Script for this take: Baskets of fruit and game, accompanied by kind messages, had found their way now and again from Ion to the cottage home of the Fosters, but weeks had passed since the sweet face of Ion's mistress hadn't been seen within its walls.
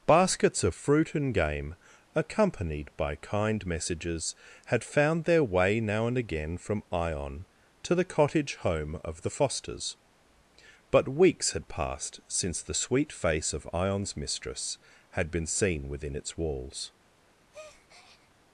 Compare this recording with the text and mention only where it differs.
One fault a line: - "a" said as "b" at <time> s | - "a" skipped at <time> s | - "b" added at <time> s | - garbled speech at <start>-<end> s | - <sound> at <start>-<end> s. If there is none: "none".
- "hadn't" said as "had" at 15.1 s
- breath at 17.5-18.3 s